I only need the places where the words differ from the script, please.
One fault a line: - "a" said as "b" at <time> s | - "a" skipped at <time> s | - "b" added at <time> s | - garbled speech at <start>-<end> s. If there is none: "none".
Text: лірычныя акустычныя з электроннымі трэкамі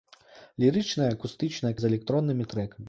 none